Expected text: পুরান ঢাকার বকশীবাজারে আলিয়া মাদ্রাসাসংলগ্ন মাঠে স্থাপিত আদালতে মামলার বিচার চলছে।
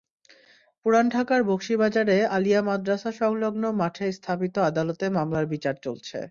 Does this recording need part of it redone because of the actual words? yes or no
no